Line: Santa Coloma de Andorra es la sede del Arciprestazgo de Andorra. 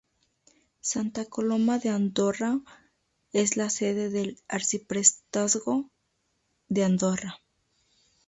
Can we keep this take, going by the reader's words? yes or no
yes